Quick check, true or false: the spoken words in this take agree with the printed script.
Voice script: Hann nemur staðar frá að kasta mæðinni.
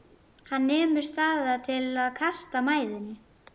false